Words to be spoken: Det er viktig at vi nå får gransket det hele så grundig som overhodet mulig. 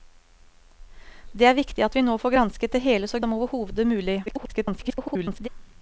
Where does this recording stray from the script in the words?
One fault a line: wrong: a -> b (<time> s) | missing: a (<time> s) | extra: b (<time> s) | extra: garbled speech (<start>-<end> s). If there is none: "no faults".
missing: grundig (3.2 s)
extra: garbled speech (4.3-5.5 s)